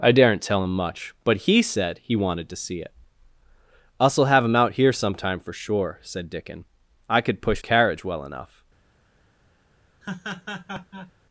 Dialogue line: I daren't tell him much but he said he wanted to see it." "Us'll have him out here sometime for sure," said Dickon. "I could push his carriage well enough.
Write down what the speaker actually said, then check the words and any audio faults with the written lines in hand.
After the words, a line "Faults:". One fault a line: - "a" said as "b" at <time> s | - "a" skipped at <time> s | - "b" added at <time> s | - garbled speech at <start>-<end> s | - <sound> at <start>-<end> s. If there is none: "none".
I daren't tell him much but he said he wanted to see it." "Us'll have him out here sometime for sure," said Dickon. "I could push carriage well enough.
Faults:
- "his" skipped at 7.6 s
- laugh at 10.0-11.1 s